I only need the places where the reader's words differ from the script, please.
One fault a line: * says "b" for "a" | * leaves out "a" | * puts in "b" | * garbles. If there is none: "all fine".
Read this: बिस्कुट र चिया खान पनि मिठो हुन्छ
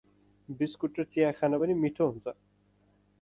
all fine